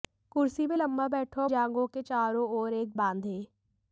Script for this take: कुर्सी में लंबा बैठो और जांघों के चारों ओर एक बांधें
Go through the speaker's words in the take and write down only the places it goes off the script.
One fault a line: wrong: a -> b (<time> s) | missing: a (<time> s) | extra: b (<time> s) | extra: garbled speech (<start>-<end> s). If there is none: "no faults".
no faults